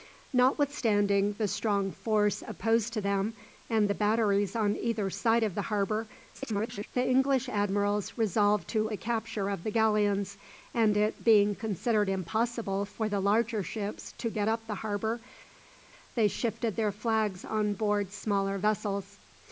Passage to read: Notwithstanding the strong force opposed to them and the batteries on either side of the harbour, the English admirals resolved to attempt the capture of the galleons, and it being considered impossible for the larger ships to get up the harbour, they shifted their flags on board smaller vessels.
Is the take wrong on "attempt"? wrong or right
wrong